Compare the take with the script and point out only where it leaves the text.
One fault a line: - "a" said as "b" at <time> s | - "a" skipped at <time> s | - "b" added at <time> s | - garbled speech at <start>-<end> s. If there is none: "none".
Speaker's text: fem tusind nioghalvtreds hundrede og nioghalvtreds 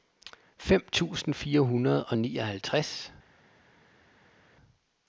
- "nioghalvtreds" said as "fire" at 1.3 s